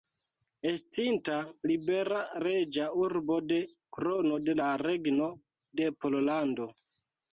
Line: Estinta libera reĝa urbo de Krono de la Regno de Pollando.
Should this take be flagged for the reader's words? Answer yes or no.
no